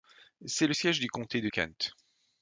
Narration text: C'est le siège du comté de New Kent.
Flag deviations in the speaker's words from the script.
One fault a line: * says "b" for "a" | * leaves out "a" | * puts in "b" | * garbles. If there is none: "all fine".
* leaves out "New"